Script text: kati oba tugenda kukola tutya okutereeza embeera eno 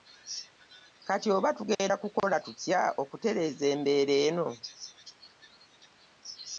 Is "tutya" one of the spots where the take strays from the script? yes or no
no